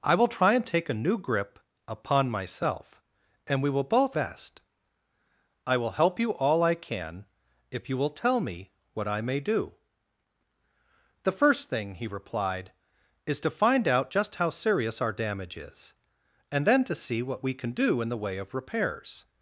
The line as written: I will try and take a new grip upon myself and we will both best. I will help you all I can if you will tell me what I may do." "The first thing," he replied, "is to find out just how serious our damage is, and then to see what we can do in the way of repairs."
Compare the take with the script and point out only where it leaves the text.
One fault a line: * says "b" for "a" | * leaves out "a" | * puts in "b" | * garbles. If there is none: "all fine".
all fine